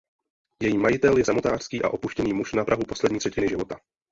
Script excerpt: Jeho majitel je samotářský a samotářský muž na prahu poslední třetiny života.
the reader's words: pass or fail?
fail